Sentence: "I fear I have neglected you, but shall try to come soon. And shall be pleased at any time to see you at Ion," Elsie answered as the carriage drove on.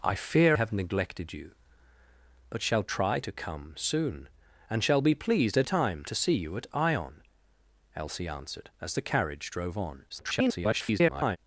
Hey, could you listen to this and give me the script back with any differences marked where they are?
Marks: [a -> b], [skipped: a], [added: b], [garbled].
"I fear [skipped: I] have neglected you, but shall try to come soon. And shall be pleased at [skipped: any] time to see you at Ion," Elsie answered as the carriage drove on. [garbled]